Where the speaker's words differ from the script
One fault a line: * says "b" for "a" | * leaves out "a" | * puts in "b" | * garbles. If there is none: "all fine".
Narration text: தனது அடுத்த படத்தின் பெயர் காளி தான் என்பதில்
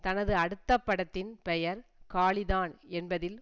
all fine